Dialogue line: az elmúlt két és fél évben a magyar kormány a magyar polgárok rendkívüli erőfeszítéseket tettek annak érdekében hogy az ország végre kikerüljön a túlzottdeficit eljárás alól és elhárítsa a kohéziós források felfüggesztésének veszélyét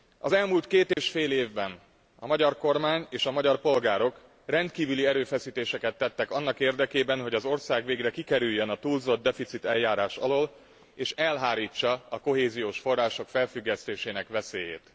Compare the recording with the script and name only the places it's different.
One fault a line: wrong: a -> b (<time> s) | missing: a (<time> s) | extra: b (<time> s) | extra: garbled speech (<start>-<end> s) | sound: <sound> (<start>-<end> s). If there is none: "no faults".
sound: dropout (0.9-1.0 s)
extra: és (3.1 s)